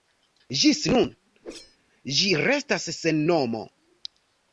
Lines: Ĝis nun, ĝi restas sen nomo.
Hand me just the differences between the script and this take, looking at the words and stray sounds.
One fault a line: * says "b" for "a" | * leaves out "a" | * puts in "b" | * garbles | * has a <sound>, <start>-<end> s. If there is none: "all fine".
* has a whoosh, 1.4-1.8 s